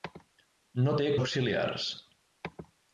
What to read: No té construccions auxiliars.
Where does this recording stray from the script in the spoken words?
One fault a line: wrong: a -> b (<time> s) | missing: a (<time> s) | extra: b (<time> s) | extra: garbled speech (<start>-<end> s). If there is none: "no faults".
missing: construccions (1.1 s)